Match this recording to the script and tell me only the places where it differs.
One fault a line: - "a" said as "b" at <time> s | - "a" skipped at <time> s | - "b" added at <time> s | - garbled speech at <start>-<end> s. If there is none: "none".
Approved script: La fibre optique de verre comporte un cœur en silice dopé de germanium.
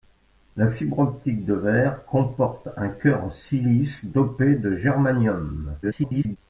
- garbled speech at 5.8-6.4 s